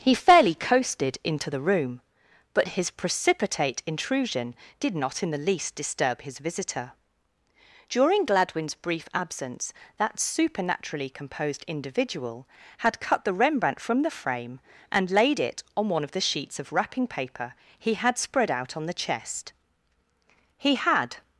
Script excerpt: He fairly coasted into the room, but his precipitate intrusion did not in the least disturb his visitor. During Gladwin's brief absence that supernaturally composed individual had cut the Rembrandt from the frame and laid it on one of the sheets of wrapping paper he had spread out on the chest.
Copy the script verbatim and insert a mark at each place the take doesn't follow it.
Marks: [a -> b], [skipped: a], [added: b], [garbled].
He fairly coasted into the room, but his precipitate intrusion did not in the least disturb his visitor. During Gladwin's brief absence that supernaturally composed individual had cut the Rembrandt from the frame and laid it on one of the sheets of wrapping paper he had spread out on the chest. [added: He had]